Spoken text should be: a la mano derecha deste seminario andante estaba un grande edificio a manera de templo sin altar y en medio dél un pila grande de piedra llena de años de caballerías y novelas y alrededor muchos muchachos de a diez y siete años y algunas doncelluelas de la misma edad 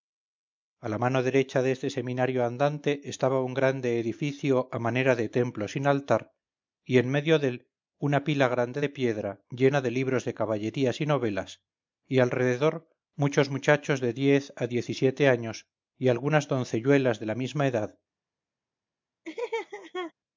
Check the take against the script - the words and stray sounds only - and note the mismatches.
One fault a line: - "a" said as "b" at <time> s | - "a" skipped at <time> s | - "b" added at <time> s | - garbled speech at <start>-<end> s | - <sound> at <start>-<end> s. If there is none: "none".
- "un" said as "una" at 8.1 s
- "años" said as "libros" at 10.0 s
- "diez" added at 14.1 s
- laugh at 19.2-20.1 s